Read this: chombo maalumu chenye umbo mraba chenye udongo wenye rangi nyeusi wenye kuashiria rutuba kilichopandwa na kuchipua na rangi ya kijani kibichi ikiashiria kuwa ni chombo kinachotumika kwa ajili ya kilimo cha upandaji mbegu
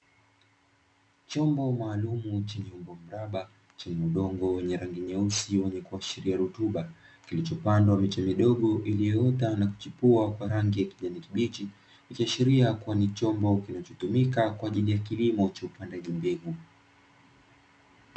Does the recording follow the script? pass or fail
fail